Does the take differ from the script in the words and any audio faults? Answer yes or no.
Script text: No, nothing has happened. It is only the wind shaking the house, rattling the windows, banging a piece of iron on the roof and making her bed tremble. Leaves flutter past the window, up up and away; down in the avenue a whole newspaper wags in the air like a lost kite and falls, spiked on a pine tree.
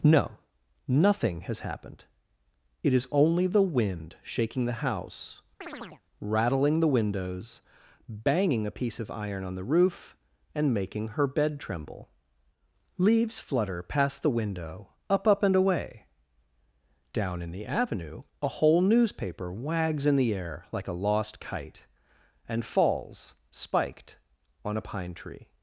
yes